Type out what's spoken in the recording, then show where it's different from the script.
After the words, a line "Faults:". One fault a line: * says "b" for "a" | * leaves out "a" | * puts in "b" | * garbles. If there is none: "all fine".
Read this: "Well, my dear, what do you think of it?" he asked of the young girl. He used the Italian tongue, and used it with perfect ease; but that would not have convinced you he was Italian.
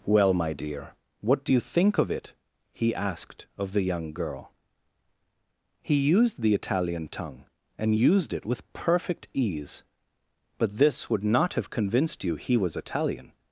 "Well, my dear, what do you think of it?" he asked of the young girl. He used the Italian tongue, and used it with perfect ease; but this would not have convinced you he was Italian.
Faults:
* says "this" for "that"